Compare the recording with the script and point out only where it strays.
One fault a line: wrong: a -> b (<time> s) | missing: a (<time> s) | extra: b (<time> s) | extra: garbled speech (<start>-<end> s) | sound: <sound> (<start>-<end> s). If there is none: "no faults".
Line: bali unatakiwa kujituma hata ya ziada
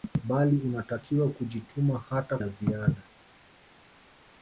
no faults